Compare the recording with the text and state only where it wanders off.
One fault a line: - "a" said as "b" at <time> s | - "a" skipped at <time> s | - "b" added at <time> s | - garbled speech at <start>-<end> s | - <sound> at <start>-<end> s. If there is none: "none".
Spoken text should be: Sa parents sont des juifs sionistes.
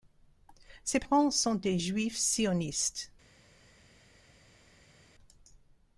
- "Sa" said as "Ses" at 0.8 s